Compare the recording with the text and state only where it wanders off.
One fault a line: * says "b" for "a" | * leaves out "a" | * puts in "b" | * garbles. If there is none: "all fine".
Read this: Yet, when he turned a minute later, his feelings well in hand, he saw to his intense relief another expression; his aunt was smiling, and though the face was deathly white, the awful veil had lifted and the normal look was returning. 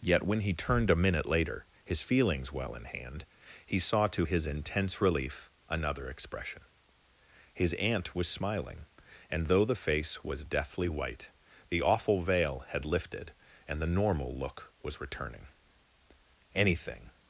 * puts in "Anything"